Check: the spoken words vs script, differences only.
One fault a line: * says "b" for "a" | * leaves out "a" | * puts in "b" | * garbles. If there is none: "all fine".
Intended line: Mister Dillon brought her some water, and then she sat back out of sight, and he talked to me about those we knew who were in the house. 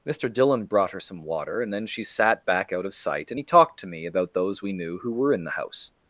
all fine